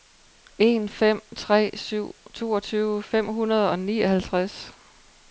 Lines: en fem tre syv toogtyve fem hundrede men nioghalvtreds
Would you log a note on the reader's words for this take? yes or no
yes